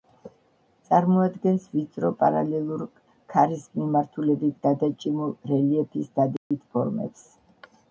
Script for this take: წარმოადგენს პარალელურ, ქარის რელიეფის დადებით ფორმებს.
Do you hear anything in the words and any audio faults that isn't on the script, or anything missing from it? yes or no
yes